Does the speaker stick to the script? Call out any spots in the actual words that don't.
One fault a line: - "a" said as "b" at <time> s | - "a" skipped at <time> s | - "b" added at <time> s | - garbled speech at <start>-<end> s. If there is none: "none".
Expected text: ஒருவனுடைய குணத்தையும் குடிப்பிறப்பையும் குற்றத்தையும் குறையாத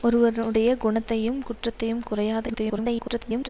- "குடிப்பிறப்பையும்" skipped at 1.4 s
- garbled speech at 2.5-3.5 s